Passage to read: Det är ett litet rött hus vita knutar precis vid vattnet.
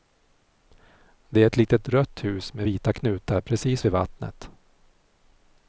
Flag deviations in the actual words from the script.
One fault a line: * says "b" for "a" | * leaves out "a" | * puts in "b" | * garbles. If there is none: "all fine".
* puts in "med"